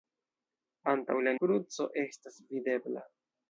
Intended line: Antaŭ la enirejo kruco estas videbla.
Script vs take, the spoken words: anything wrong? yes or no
yes